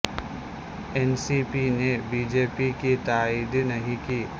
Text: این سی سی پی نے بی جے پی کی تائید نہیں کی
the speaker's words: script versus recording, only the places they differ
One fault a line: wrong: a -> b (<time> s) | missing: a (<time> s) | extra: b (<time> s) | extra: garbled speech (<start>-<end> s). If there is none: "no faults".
missing: سی (1.4 s)